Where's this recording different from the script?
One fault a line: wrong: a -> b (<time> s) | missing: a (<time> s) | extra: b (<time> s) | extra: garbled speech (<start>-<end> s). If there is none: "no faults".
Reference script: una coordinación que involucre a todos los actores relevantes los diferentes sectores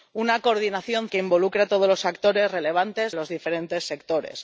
no faults